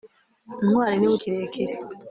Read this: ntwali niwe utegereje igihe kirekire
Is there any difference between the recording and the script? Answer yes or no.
yes